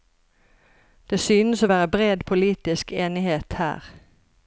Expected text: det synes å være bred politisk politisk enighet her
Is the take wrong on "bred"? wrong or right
right